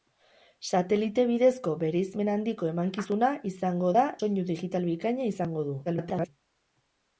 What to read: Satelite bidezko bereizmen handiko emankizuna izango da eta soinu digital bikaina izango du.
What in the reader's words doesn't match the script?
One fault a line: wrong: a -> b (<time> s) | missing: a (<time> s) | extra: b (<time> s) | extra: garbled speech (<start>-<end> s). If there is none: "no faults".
missing: eta (4.1 s)
extra: garbled speech (5.8-6.3 s)